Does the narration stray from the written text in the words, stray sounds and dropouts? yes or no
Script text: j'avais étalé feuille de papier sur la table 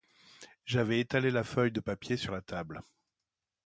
yes